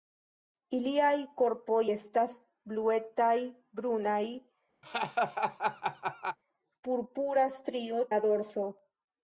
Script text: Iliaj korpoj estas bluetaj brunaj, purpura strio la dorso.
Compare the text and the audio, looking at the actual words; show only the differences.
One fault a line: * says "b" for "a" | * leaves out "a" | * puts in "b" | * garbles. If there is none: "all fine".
all fine